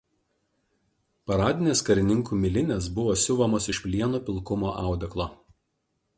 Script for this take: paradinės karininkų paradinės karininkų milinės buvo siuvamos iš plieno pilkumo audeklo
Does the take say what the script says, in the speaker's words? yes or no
no